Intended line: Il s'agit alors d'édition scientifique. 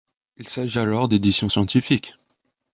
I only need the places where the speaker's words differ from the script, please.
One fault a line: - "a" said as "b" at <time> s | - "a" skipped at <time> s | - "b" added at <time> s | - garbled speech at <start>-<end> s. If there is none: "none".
none